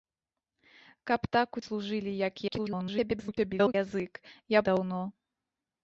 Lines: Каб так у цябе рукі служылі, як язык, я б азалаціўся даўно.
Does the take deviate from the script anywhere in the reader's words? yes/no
yes